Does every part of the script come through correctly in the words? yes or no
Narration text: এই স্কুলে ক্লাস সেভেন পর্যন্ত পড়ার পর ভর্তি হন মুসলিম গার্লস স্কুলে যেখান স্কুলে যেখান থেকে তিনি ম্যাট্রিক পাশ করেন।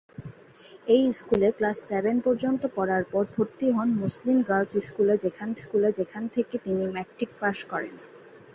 yes